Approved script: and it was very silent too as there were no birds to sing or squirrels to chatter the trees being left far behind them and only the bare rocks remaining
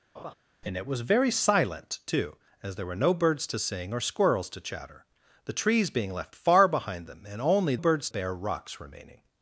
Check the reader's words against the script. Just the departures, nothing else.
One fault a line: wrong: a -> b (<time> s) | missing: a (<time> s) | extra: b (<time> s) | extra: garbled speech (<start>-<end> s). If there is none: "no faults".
wrong: the -> birds (7.7 s)